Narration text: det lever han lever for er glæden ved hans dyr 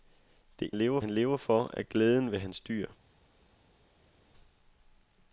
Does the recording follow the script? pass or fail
pass